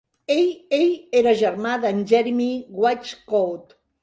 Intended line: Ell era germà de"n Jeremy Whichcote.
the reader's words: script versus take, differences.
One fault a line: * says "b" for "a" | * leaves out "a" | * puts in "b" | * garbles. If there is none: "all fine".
* puts in "ell"